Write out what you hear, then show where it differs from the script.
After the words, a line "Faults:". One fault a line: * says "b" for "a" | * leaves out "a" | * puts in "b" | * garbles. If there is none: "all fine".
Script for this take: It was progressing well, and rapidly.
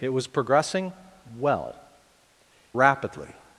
It was progressing well, rapidly.
Faults:
* leaves out "and"